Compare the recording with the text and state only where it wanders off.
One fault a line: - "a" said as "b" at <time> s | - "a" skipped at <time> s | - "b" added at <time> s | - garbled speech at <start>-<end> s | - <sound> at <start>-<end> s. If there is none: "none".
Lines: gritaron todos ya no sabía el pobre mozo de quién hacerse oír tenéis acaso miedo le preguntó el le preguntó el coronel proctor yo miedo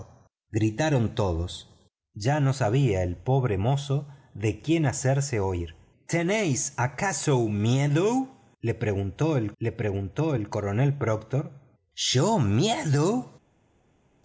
none